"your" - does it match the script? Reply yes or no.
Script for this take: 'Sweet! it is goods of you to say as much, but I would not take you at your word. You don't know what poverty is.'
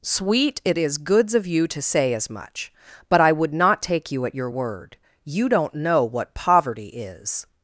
yes